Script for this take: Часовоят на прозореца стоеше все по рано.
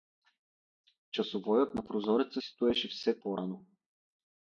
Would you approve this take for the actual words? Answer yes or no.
yes